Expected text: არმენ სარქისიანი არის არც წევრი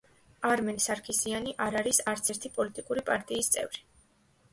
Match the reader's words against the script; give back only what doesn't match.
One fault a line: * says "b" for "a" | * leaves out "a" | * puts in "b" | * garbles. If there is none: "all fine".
* puts in "არ"
* puts in "ერთი პოლიტიკური პარტიის"